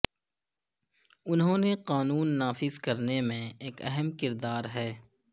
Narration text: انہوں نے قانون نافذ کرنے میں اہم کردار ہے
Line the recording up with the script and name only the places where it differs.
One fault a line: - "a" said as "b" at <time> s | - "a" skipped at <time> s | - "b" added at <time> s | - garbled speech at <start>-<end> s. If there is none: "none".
- "ایک" added at 3.6 s